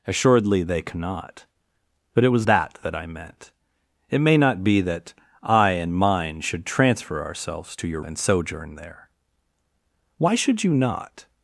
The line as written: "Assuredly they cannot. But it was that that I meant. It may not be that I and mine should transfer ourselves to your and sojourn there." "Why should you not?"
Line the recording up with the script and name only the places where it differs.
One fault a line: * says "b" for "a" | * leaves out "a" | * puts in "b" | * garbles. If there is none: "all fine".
all fine